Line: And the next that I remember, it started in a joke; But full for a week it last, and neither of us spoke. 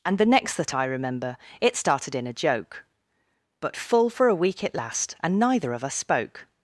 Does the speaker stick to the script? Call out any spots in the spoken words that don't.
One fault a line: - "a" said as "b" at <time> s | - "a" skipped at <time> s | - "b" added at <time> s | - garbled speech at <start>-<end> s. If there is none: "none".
none